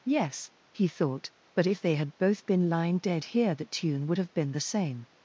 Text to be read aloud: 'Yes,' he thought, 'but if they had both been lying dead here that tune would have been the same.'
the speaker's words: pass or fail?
fail